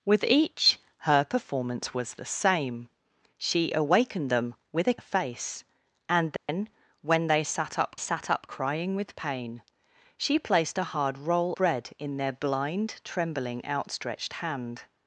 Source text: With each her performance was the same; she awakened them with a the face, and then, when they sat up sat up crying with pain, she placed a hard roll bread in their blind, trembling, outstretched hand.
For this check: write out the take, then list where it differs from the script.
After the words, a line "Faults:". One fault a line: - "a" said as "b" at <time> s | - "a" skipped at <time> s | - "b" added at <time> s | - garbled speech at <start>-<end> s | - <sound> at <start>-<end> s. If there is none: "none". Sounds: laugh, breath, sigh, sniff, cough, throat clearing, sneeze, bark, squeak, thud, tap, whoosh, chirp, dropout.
With each her performance was the same; she awakened them with a the face, and then, when they sat up sat up crying with pain, she placed a hard roll bread in their blind, trembling, outstretched hand.
Faults:
- dropout at 6.4-6.5 s